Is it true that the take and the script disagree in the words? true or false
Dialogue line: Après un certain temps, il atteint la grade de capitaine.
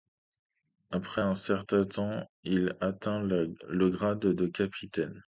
true